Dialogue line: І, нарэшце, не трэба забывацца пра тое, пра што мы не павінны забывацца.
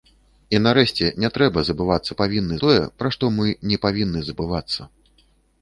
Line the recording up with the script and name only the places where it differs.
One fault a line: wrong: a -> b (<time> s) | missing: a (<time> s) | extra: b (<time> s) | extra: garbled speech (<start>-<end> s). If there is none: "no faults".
wrong: пра -> павінны (2.2 s)